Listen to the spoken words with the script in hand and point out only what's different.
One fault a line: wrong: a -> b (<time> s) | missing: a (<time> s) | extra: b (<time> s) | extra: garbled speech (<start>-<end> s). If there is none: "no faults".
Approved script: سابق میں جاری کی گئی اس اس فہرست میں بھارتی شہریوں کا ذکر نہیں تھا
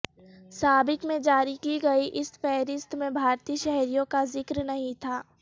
missing: اس (2.3 s)